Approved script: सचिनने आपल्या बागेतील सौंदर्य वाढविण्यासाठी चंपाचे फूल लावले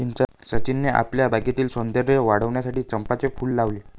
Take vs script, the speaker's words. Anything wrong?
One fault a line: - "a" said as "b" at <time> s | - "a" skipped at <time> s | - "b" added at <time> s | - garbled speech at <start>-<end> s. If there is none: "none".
none